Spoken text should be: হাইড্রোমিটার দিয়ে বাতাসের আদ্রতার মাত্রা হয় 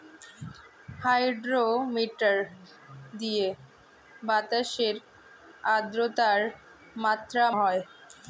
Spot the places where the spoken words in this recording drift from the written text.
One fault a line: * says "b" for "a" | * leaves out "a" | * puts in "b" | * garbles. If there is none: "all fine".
all fine